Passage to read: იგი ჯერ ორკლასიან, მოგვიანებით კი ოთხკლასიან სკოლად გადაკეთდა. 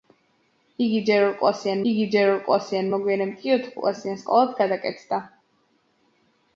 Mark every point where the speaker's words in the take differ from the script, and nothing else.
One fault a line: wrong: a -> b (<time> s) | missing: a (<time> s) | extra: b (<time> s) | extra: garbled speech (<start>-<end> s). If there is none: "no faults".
extra: იგი ჯერ ორკლასიან (1.9 s)